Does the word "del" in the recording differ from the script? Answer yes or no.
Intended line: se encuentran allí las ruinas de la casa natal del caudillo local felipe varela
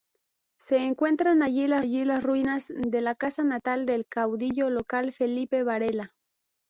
no